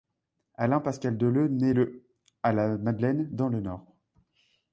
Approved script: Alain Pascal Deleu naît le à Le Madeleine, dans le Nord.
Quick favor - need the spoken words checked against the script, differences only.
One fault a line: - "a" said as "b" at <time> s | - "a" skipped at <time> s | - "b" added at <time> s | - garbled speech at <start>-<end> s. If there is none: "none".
- "Le" said as "La" at 2.5 s